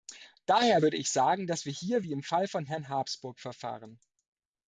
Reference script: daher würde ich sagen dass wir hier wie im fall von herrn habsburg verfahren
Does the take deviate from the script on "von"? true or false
false